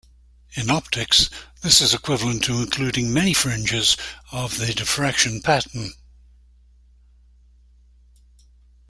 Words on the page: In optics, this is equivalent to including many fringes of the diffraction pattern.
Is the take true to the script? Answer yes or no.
yes